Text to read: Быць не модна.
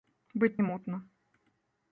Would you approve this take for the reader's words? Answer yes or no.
yes